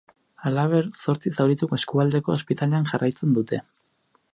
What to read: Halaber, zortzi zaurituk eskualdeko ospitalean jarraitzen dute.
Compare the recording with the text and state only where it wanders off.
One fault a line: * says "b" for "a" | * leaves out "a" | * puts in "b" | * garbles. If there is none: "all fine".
all fine